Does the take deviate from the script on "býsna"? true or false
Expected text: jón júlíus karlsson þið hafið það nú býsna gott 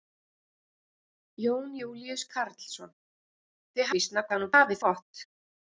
true